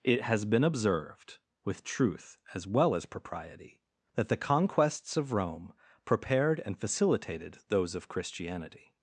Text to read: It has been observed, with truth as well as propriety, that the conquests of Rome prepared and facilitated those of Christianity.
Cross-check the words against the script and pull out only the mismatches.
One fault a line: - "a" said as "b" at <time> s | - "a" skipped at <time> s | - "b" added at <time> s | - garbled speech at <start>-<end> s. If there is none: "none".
none